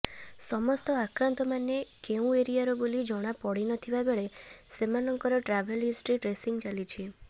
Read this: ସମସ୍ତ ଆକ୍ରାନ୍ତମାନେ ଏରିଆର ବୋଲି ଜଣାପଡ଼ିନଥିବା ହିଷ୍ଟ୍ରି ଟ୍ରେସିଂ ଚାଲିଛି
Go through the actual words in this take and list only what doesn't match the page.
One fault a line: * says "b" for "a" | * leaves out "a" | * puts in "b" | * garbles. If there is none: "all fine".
* puts in "କେଉଁ"
* puts in "ବେଳେ ସେମାନଙ୍କର ଟ୍ରାଭେଲ"